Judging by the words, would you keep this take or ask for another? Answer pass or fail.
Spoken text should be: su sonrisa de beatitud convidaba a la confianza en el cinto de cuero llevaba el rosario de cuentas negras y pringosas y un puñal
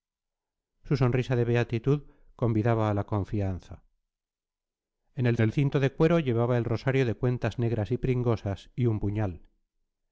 fail